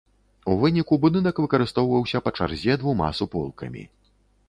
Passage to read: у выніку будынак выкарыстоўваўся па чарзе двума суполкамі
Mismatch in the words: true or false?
false